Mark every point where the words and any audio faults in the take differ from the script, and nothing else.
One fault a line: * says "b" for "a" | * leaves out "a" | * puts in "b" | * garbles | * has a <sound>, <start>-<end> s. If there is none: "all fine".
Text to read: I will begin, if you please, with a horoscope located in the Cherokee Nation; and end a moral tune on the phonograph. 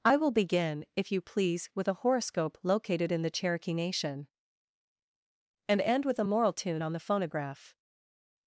* puts in "with"